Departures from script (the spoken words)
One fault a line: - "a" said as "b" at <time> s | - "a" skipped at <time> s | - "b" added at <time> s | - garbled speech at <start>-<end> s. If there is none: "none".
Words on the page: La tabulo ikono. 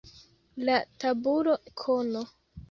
none